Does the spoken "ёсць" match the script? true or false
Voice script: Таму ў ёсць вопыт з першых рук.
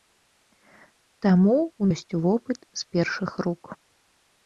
true